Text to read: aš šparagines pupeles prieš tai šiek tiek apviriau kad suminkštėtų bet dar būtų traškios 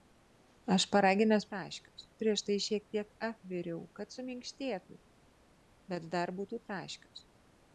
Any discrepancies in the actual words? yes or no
yes